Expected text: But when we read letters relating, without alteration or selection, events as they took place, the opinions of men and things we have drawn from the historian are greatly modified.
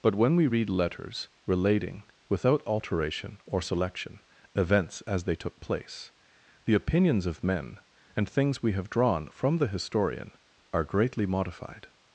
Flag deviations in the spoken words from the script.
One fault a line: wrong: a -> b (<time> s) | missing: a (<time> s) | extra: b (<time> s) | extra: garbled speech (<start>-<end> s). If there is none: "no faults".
no faults